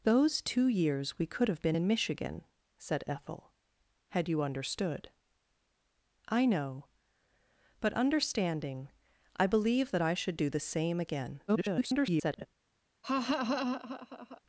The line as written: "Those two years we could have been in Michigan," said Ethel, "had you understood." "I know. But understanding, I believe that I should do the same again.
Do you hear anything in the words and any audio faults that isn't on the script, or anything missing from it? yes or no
yes